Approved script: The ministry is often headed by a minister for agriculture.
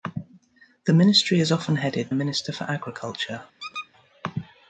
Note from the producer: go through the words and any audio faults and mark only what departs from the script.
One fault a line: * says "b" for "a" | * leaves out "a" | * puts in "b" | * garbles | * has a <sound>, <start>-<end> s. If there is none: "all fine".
* leaves out "by"
* has a squeak, 3.6-3.9 s